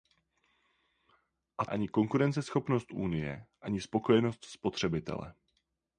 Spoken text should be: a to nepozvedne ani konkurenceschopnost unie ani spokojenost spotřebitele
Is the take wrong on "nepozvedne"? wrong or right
wrong